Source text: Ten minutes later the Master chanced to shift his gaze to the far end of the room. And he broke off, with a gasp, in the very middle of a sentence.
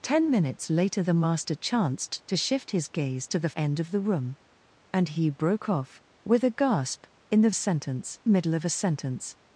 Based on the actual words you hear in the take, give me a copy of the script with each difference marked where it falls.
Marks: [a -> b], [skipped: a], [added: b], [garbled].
Ten minutes later the Master chanced to shift his gaze to the [skipped: far] end of the room. And he broke off, with a gasp, in the [very -> sentence] middle of a sentence.